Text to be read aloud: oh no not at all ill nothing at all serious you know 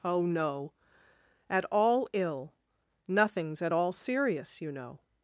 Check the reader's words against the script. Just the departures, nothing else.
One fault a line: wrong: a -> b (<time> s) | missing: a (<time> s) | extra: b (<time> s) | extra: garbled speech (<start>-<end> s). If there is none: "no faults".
missing: not (0.7 s)
wrong: nothing -> nothings (3.1 s)